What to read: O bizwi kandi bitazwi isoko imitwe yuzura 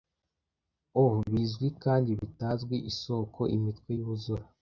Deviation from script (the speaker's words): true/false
false